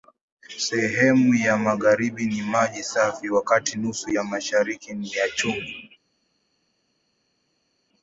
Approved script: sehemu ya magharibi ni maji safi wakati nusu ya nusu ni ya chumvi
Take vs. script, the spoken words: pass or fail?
fail